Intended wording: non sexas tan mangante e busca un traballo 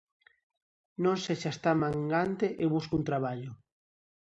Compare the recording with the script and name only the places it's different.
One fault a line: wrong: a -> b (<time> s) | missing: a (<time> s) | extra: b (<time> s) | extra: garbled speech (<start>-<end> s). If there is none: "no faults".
no faults